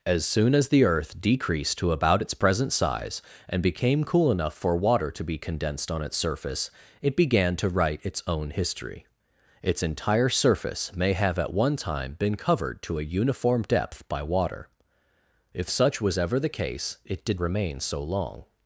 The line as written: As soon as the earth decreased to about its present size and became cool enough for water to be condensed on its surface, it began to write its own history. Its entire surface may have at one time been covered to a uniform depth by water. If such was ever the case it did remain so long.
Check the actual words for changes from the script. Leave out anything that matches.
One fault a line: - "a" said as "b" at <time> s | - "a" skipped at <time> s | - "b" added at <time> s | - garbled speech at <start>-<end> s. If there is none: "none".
none